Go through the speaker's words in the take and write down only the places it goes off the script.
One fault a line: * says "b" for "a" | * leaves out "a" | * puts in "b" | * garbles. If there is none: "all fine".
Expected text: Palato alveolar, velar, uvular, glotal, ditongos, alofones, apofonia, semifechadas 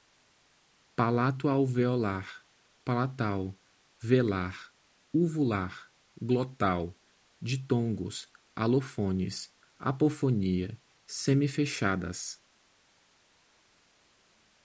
* puts in "palatal"